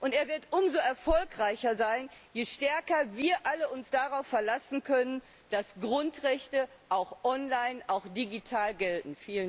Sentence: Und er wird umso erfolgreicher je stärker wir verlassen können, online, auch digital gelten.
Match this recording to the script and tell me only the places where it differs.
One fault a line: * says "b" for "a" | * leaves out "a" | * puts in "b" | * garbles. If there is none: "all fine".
* puts in "sein"
* puts in "alle uns darauf"
* puts in "dass Grundrechte auch"